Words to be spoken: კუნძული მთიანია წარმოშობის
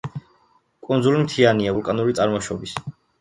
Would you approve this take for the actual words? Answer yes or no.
no